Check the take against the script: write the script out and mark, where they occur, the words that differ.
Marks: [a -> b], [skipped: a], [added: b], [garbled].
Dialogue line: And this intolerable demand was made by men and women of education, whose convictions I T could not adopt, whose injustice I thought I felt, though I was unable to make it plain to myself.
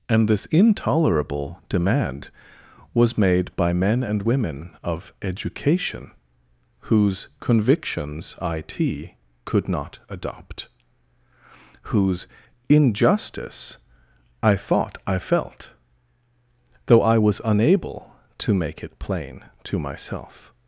And this intolerable demand was made by men and women of education, whose convictions I T could not adopt, whose injustice I thought I felt, though I was unable to make it plain to myself.